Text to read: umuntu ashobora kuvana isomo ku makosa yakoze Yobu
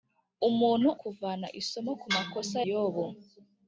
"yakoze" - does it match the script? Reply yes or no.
no